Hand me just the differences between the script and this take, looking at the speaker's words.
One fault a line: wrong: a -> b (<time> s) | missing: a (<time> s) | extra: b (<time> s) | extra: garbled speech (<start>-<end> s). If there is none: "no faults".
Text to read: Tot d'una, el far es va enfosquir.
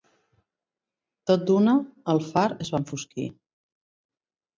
no faults